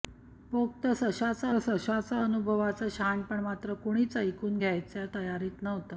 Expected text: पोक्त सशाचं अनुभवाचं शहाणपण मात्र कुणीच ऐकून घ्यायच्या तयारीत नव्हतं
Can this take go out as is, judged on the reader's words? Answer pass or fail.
fail